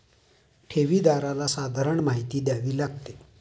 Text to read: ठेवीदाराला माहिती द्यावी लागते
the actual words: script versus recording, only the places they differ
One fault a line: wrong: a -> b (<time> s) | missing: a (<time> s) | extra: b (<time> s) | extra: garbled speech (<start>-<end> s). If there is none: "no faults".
extra: सर्वसाधारण (1.5 s)